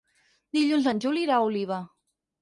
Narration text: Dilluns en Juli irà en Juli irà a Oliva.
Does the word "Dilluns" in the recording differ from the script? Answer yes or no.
no